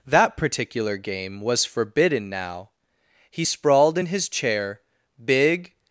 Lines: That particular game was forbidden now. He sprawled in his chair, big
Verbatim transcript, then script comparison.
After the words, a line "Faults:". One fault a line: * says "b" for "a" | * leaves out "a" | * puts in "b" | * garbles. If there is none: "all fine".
That particular game was forbidden now. He sprawled in his chair, big
Faults:
all fine